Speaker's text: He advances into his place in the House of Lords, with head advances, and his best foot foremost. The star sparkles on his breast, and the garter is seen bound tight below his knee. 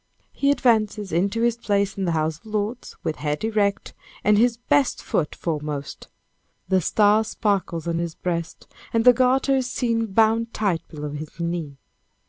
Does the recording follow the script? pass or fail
fail